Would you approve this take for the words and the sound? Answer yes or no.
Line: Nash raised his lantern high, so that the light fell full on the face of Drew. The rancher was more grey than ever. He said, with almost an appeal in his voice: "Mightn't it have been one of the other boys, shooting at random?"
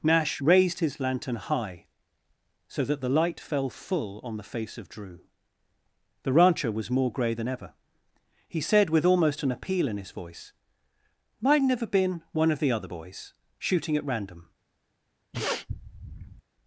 no